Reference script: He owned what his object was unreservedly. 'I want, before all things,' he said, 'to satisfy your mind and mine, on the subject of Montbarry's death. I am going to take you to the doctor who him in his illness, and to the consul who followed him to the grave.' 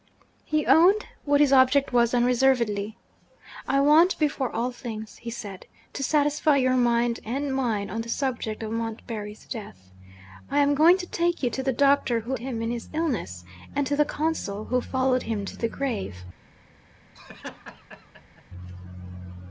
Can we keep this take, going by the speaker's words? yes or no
yes